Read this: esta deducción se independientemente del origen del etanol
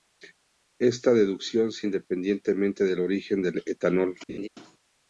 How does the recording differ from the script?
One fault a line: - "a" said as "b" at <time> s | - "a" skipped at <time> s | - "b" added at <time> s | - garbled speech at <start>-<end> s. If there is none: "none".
none